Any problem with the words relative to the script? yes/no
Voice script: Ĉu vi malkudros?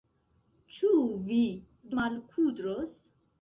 no